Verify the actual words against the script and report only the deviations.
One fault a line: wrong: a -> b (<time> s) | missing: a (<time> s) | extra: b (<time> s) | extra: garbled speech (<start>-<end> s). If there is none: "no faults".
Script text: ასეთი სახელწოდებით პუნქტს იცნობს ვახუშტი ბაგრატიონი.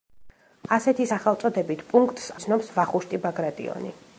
no faults